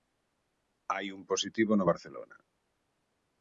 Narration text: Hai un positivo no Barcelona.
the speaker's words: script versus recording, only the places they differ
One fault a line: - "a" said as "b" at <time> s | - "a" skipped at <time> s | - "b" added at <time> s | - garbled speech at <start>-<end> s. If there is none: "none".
none